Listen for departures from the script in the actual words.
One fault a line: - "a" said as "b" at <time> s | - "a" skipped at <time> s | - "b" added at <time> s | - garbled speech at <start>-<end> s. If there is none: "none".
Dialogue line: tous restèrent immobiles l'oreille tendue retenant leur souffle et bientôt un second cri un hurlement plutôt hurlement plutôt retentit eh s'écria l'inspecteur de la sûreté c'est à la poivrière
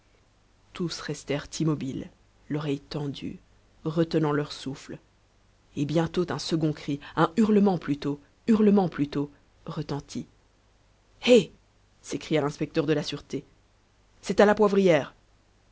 none